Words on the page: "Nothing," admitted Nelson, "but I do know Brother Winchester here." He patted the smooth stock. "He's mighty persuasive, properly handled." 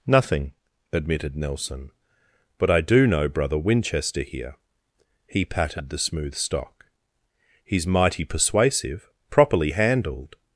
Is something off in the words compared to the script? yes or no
no